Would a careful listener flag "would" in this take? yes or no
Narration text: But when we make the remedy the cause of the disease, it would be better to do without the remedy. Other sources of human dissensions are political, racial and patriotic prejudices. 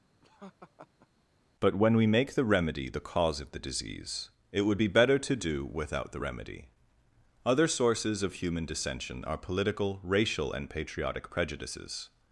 no